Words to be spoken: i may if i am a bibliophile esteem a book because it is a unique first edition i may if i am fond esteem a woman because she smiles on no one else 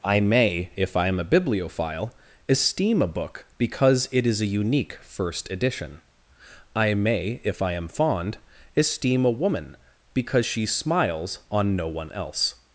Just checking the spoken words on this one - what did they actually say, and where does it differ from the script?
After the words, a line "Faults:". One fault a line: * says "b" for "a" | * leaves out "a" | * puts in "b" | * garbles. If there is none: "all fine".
i may if i am a bibliophile esteem a book because it is a unique first edition i may if i am fond esteem a woman because she smiles on no one else
Faults:
all fine